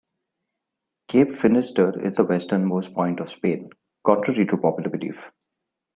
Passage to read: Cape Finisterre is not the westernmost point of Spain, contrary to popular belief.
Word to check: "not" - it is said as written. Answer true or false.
false